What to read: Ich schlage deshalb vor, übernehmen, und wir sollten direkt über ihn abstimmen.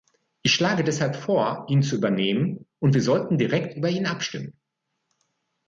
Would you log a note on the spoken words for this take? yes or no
yes